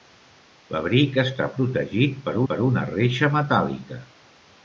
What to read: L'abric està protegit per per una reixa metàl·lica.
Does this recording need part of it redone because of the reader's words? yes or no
no